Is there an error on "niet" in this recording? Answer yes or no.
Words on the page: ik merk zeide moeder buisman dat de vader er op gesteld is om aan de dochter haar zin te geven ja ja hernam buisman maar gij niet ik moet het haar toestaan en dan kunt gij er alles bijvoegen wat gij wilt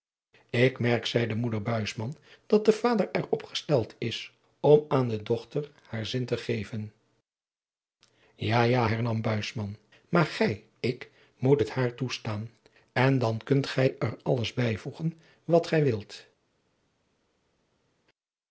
yes